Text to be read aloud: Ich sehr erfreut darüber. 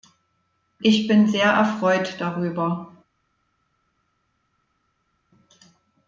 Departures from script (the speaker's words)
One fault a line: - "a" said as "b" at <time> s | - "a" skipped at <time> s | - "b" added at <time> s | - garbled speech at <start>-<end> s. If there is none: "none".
- "bin" added at 1.1 s